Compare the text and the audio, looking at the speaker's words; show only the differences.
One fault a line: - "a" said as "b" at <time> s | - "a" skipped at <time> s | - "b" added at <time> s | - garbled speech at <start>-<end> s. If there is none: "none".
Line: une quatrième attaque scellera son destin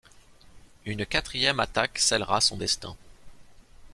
none